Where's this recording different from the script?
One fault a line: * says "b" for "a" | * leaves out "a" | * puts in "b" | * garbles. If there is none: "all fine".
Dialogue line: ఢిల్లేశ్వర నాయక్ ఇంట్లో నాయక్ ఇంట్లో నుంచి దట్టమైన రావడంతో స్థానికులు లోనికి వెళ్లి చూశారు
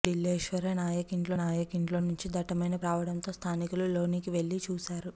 all fine